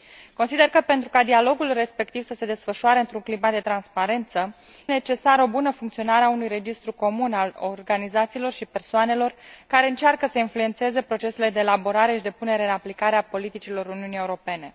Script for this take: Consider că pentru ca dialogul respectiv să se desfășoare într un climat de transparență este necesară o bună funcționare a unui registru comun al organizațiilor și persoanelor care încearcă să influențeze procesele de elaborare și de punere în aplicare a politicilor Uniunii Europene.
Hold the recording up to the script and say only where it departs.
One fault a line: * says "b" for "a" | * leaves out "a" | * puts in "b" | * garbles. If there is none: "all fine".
* leaves out "este"